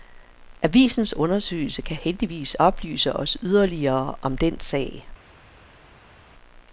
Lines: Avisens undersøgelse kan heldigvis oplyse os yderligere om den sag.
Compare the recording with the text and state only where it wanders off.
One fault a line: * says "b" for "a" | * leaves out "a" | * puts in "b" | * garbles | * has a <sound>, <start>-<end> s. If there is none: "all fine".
all fine